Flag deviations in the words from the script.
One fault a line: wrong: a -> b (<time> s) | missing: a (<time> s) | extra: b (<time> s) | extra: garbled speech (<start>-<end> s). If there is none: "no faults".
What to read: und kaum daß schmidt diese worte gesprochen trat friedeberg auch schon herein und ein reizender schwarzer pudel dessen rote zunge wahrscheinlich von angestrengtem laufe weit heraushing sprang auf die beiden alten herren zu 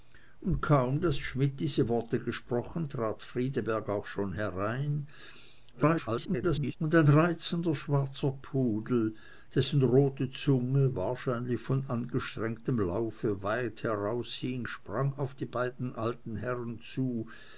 extra: garbled speech (5.7-6.8 s)